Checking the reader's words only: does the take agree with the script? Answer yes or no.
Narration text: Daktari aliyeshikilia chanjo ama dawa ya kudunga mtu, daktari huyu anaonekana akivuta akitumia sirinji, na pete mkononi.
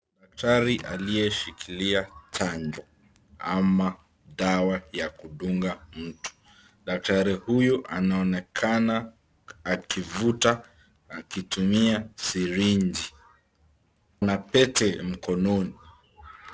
yes